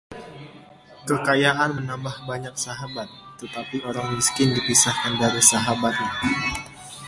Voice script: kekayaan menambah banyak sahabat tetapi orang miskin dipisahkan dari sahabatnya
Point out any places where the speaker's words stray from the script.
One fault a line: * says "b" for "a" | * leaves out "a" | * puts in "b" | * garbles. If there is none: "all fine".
all fine